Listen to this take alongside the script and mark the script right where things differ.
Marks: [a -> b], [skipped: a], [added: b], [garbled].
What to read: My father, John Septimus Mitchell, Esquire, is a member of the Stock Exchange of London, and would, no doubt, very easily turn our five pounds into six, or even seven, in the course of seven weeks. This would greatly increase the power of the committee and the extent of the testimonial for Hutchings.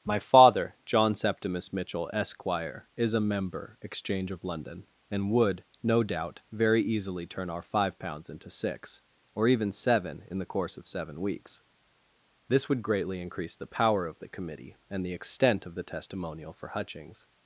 My father, John Septimus Mitchell, Esquire, is a member [skipped: of the Stock] Exchange of London, and would, no doubt, very easily turn our five pounds into six, or even seven, in the course of seven weeks. This would greatly increase the power of the committee and the extent of the testimonial for Hutchings.